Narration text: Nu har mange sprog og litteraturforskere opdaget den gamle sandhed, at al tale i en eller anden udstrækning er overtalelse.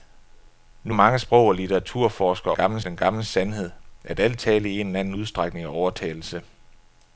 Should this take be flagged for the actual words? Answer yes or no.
yes